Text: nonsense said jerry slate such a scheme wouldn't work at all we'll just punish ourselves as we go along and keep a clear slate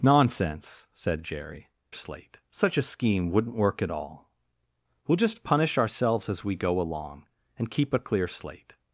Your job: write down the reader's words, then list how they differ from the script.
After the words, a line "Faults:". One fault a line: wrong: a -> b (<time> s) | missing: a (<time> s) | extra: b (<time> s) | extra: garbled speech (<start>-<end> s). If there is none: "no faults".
nonsense said jerry slate such a scheme wouldn't work at all we'll just punish ourselves as we go along and keep a clear slate
Faults:
no faults